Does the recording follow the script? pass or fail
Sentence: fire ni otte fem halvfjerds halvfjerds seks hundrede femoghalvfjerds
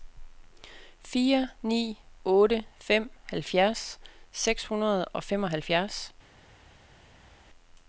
fail